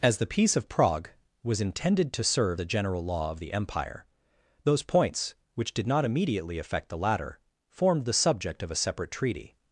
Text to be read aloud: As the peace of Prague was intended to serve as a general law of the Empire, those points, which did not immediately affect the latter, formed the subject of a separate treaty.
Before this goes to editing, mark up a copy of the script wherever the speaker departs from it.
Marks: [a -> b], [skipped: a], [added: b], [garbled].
As the peace of Prague was intended to serve [skipped: as] a general law of the Empire, those points, which did not immediately affect the latter, formed the subject of a separate treaty.